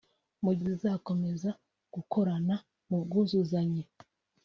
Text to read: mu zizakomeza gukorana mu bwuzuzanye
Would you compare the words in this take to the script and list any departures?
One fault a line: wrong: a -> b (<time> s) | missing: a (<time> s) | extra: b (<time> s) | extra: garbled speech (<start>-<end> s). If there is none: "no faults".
no faults